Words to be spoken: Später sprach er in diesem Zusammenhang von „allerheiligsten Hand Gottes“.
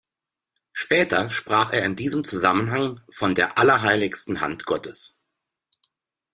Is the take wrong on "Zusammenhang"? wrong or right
right